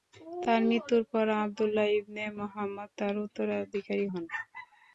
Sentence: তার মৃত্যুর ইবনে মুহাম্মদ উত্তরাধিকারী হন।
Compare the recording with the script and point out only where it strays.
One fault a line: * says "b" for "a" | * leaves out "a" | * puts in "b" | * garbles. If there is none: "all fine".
* puts in "পর আবদুল্লাহ"
* puts in "তার"